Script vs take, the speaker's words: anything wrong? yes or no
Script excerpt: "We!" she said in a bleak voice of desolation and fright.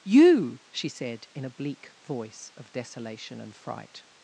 yes